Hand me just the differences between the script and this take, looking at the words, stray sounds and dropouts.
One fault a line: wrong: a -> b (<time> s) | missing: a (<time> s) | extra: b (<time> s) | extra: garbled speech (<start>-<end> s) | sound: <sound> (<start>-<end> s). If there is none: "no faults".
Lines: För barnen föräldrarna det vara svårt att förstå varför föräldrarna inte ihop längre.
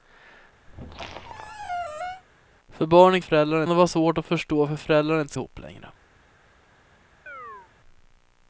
sound: squeak (0.7-2.2 s)
sound: chirp (7.3-7.7 s)